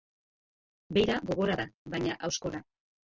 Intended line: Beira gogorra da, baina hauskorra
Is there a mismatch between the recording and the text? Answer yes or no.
no